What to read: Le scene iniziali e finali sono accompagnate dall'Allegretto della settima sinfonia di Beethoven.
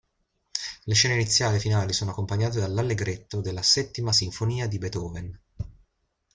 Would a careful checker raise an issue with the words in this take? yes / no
no